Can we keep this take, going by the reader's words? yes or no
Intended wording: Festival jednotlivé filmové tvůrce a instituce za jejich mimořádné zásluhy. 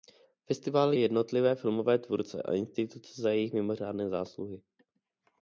yes